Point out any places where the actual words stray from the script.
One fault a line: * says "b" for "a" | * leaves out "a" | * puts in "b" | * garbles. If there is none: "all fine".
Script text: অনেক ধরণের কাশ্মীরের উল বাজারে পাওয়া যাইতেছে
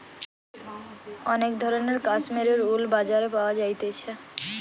all fine